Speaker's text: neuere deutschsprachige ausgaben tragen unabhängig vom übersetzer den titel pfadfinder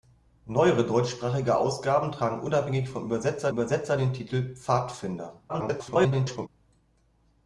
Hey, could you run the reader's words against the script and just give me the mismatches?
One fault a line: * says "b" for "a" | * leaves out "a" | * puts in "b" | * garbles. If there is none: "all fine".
* puts in "übersetzer"
* garbles